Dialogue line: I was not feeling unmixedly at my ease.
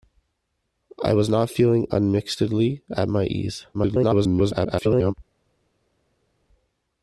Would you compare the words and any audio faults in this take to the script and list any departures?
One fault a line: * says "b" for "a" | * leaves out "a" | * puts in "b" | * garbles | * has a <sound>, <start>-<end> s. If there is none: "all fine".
* garbles